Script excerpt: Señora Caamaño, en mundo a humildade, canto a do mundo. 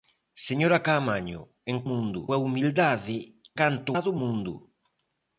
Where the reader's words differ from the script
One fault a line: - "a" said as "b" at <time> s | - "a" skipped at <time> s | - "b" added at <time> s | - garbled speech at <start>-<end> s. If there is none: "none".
none